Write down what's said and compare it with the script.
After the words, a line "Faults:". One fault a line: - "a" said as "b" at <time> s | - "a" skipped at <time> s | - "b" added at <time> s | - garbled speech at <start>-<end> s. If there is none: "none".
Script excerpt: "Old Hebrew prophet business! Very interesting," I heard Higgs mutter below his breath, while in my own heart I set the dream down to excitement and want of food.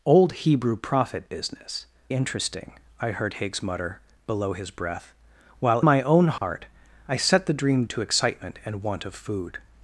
"Old Hebrew prophet business! Interesting," I heard Higgs mutter below his breath, while my own heart I set the dream to excitement and want of food.
Faults:
- "Very" skipped at 1.9 s
- "in" skipped at 5.8 s
- "down" skipped at 7.8 s